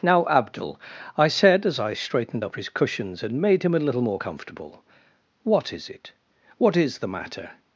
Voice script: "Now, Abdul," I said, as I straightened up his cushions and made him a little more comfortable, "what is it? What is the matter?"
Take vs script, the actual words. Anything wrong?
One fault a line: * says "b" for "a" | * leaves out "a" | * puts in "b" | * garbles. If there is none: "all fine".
all fine